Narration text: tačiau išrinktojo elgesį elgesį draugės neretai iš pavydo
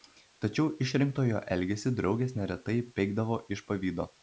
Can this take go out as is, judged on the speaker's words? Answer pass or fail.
fail